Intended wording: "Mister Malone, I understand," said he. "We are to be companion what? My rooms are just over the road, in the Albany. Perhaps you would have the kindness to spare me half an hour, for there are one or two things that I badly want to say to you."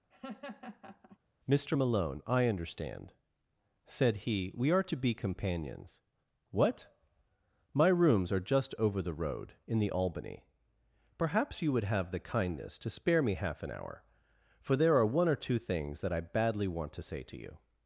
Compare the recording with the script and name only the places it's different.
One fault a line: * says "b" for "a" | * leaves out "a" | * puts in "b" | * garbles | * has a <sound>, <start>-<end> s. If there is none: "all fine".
* has a laugh, 0.1-1.2 s
* says "companions" for "companion"